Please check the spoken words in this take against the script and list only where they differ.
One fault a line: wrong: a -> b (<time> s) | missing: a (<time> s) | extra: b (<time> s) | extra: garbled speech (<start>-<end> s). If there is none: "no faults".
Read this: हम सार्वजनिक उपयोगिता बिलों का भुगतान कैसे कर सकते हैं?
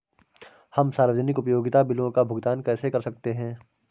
no faults